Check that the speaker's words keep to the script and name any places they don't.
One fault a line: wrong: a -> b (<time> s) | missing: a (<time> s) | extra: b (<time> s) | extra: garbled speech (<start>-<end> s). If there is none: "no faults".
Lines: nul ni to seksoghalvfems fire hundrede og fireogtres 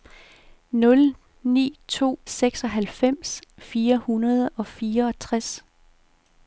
no faults